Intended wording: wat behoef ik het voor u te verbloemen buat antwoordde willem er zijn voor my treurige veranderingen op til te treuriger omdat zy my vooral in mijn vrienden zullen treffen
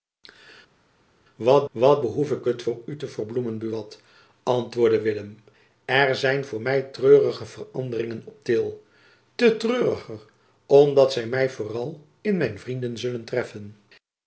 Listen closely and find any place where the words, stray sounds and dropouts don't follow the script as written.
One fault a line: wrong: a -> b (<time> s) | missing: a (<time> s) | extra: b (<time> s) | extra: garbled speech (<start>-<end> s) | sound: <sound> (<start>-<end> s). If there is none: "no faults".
extra: wat (1.7 s)